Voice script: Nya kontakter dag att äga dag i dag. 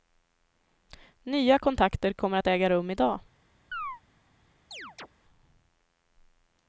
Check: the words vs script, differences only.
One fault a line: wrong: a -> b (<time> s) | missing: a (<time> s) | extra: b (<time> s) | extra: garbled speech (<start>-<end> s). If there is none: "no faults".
wrong: dag -> kommer (2.1 s)
wrong: dag -> rum (2.7 s)